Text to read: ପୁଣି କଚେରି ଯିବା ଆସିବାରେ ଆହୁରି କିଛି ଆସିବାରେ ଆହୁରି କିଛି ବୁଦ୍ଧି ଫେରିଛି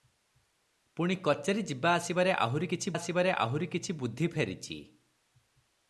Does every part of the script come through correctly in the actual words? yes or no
yes